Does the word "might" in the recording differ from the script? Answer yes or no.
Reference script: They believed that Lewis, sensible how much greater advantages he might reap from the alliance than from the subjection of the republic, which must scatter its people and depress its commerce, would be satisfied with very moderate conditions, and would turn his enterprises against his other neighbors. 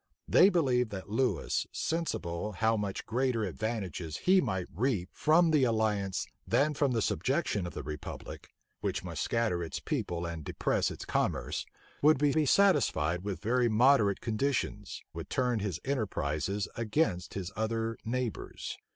no